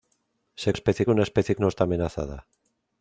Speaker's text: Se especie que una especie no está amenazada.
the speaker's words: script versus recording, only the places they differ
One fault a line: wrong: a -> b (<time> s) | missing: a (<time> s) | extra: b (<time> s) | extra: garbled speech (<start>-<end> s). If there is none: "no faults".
no faults